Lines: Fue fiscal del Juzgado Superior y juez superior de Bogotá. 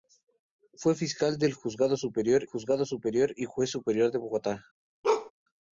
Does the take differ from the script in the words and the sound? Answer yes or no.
yes